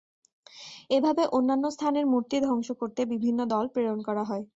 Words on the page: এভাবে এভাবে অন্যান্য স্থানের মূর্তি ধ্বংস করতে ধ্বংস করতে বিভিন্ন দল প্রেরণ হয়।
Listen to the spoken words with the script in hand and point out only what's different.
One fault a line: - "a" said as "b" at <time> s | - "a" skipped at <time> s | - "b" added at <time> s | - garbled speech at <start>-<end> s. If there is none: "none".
- "এভাবে" skipped at 1.2 s
- "ধ্বংস করতে" skipped at 3.0 s
- "করা" added at 4.1 s